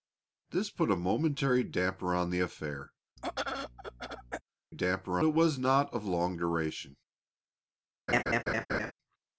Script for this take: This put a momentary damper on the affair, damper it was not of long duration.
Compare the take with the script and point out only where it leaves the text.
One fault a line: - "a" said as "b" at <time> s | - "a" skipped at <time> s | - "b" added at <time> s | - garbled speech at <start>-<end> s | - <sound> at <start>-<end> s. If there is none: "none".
- throat clearing at 3.2-4.4 s
- laugh at 8.1-8.9 s